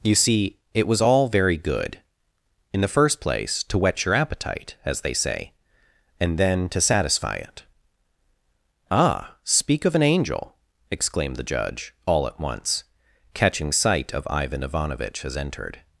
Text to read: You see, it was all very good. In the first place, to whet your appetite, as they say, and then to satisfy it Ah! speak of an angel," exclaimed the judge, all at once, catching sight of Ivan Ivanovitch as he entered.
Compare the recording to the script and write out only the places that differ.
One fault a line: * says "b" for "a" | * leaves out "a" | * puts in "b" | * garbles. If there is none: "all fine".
* leaves out "he"